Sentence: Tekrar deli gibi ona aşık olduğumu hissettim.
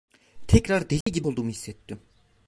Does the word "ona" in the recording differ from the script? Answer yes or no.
yes